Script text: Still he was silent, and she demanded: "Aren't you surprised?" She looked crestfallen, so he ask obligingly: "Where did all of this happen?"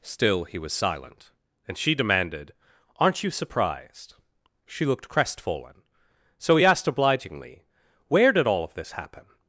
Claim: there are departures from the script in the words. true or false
true